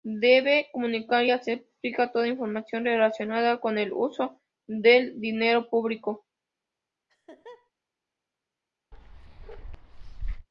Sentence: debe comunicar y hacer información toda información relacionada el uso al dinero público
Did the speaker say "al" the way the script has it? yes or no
no